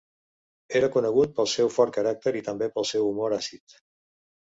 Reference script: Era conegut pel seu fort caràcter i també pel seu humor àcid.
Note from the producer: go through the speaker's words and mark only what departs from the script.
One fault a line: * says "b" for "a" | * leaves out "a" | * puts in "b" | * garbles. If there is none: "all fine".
all fine